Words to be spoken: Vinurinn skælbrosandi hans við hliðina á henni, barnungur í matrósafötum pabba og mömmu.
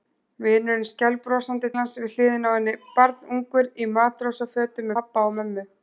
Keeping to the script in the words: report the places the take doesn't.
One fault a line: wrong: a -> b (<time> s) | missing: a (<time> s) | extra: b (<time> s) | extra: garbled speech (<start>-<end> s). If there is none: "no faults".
no faults